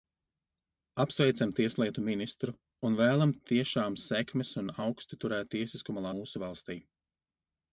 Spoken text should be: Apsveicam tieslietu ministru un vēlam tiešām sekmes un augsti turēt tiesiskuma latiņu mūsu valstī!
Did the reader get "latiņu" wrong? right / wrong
wrong